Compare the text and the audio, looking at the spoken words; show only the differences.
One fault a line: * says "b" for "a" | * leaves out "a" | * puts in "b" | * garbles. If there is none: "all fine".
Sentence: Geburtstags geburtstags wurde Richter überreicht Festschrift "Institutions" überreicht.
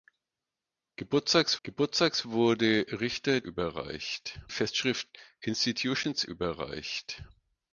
all fine